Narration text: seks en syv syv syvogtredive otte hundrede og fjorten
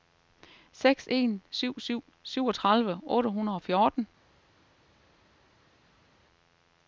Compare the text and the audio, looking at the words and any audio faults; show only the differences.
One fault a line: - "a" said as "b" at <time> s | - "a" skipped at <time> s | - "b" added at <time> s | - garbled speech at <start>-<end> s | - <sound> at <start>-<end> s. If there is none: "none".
none